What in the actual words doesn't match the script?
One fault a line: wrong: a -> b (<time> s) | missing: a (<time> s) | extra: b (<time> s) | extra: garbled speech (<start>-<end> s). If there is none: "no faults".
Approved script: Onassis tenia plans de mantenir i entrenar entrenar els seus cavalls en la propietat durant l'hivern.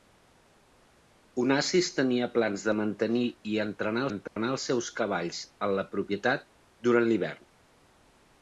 no faults